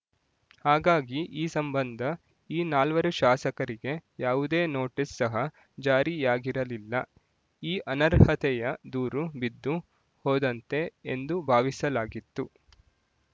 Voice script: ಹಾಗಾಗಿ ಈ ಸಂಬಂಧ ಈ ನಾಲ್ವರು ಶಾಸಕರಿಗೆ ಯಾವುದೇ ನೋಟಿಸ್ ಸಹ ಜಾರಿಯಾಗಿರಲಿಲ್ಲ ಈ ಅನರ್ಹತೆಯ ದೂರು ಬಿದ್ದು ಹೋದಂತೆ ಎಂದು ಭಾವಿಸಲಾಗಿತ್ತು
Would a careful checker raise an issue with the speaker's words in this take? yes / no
no